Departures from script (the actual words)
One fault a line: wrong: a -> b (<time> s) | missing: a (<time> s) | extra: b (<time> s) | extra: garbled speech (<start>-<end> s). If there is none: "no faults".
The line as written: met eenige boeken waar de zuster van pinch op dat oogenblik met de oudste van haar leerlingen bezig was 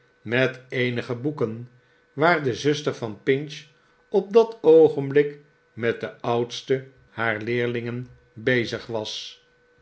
missing: van (6.9 s)